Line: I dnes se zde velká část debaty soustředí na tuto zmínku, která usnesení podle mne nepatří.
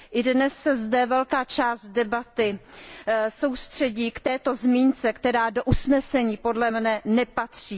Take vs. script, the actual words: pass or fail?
fail